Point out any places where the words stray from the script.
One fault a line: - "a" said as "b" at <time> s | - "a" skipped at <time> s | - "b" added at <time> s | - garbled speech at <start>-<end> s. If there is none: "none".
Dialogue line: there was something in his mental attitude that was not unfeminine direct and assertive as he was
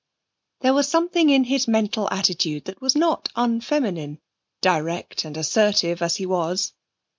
none